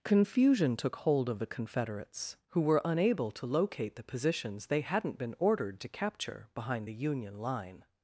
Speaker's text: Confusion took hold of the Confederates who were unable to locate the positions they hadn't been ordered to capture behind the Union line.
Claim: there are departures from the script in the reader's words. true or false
false